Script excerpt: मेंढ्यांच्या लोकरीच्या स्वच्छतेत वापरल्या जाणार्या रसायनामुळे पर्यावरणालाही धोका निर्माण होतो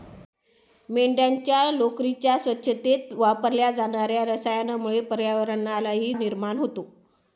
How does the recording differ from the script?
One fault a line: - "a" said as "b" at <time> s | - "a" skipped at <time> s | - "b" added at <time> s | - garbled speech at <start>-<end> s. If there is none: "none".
- "धोका" skipped at 6.1 s